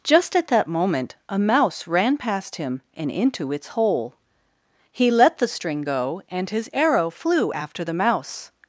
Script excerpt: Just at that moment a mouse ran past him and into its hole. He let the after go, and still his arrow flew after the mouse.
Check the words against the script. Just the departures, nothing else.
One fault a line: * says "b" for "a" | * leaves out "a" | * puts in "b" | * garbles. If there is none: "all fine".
* says "string" for "after"
* leaves out "still"